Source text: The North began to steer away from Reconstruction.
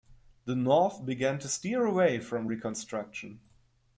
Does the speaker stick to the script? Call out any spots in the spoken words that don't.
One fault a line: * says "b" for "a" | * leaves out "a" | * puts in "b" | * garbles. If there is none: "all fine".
all fine